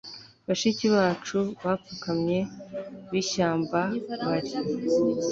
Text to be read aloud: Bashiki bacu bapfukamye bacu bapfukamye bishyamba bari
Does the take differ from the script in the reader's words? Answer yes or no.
yes